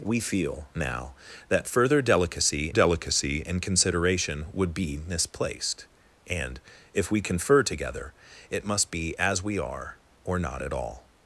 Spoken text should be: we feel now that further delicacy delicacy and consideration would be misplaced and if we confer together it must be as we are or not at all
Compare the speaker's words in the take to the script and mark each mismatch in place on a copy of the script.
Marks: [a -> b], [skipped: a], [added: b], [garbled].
we feel now that further delicacy delicacy and consideration would be misplaced and if we confer together it must be as we are or not at all